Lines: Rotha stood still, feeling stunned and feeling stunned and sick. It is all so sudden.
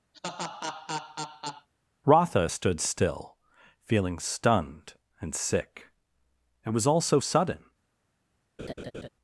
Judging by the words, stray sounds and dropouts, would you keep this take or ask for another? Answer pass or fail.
fail